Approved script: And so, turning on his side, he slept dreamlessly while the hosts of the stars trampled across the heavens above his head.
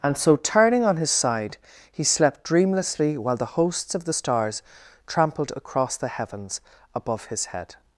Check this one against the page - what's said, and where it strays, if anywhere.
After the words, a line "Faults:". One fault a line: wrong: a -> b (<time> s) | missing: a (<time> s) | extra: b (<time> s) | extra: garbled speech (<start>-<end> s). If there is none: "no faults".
And so, turning on his side, he slept dreamlessly while the hosts of the stars trampled across the heavens above his head.
Faults:
no faults